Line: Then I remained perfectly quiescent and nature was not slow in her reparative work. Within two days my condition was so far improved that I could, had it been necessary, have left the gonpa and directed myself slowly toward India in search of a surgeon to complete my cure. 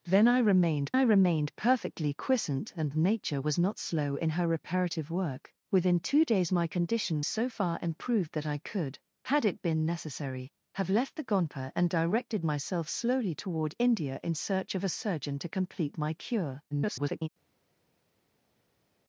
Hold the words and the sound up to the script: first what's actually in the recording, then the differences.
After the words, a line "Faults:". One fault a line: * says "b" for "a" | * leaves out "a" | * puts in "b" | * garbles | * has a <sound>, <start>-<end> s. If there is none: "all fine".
Then I remained I remained perfectly quiescent and nature was not slow in her reparative work. Within two days my condition so far improved that I could, had it been necessary, have left the gonpa and directed myself slowly toward India in search of a surgeon to complete my cure. [garbled]
Faults:
* puts in "I remained"
* leaves out "was"
* garbles